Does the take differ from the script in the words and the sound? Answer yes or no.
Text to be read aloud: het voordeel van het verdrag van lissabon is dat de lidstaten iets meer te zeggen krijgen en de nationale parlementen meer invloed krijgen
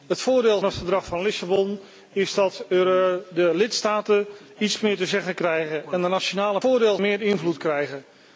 yes